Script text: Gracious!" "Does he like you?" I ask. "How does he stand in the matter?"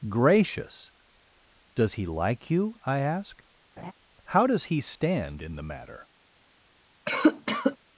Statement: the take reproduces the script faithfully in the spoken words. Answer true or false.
true